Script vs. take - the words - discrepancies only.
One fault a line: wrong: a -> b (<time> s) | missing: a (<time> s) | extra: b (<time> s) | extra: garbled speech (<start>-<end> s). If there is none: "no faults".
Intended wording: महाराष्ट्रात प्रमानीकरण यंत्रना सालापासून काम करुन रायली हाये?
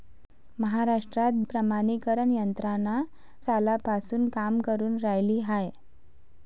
no faults